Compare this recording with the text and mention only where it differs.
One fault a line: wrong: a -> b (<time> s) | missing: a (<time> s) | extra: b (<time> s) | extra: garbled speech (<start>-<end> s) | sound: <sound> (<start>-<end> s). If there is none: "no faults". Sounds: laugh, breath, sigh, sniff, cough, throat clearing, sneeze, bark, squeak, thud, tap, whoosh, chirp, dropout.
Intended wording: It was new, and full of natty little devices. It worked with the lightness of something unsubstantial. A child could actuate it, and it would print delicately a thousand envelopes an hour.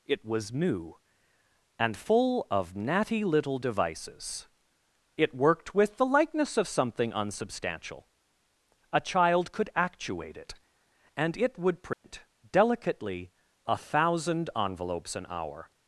wrong: lightness -> likeness (6.0 s)
sound: dropout (11.9-12.0 s)